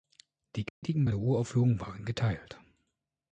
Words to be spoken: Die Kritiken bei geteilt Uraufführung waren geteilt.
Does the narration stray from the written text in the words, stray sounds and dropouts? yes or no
yes